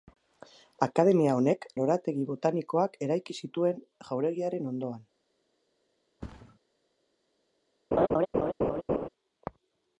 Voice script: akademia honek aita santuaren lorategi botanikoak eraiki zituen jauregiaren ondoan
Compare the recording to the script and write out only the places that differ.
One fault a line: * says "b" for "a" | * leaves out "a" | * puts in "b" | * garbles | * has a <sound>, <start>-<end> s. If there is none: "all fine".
* leaves out "aita santuaren"
* has a thud, 6.2-6.6 s
* has a laugh, 7.9-9.1 s